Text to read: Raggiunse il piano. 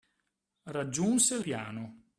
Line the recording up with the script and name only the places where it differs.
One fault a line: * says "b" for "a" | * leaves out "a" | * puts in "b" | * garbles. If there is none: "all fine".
all fine